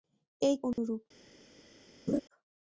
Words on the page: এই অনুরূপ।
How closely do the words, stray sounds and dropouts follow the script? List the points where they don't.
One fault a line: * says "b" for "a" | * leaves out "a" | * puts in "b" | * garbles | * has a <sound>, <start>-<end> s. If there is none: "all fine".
* has a dropout, 0.7-0.8 s
* has a laugh, 2.1-2.2 s